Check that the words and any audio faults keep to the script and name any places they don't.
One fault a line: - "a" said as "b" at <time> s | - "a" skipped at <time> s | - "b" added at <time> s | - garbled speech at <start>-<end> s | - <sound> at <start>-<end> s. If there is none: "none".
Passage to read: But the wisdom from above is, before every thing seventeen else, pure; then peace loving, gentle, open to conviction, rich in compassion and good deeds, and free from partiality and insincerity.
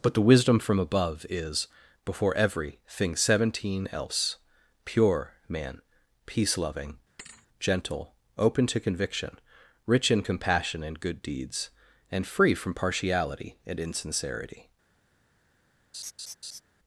- "then" said as "man" at 5.5 s
- thud at 7.2-7.5 s
- laugh at 15.9-16.6 s